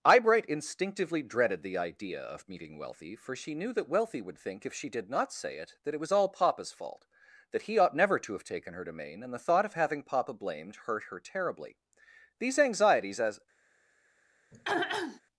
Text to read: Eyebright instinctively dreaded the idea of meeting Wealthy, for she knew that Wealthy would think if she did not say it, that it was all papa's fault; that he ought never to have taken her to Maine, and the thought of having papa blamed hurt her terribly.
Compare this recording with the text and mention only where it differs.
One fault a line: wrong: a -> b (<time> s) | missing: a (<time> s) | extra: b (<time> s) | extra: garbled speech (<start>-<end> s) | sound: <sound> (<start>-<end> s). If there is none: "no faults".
extra: These anxieties as (12.4 s)
sound: throat clearing (14.5-15.2 s)